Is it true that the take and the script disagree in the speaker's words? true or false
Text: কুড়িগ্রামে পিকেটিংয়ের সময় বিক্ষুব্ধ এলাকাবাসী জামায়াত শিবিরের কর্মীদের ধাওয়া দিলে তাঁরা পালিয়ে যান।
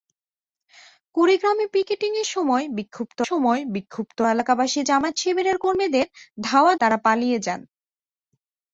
true